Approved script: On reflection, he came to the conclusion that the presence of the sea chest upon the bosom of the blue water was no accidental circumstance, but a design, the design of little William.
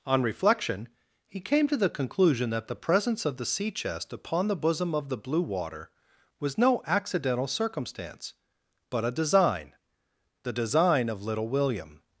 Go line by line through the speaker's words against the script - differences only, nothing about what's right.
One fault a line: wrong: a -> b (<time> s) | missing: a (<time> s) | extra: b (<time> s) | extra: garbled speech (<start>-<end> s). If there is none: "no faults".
no faults